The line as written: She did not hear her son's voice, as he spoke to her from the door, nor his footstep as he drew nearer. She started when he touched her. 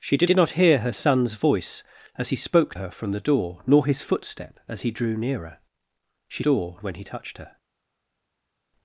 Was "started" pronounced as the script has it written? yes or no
no